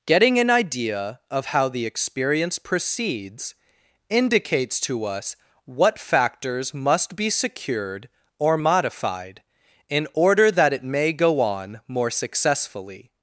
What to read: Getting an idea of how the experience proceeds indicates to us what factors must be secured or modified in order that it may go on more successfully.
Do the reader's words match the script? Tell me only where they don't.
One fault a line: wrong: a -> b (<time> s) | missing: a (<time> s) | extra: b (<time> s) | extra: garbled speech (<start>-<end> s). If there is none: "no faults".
no faults